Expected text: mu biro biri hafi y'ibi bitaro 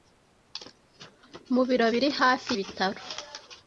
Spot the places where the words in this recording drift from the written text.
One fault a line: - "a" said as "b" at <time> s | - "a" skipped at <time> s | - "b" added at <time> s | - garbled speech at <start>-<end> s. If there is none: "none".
- "y'ibi" skipped at 2.5 s